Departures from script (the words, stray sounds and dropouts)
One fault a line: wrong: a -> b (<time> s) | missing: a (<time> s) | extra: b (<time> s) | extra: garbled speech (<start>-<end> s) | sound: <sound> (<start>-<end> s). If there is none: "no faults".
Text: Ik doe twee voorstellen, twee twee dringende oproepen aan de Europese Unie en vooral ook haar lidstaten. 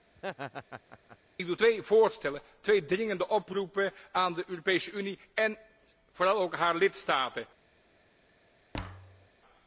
sound: laugh (0.2-1.2 s)
missing: twee (2.9 s)
sound: thud (8.7-9.3 s)